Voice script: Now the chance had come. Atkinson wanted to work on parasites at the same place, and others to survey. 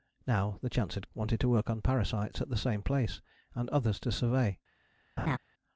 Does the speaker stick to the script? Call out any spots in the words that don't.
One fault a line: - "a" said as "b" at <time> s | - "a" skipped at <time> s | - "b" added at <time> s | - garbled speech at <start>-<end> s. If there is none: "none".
- "come Atkinson" skipped at 1.1 s